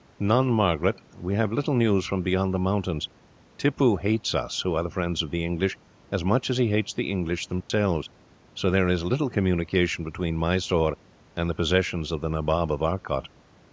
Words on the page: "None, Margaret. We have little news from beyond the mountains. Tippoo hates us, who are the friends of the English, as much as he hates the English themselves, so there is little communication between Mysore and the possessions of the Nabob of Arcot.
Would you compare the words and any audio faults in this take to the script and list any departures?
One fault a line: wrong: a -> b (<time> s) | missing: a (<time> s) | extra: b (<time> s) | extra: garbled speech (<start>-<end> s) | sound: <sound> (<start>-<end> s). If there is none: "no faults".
sound: dropout (7.6-7.7 s)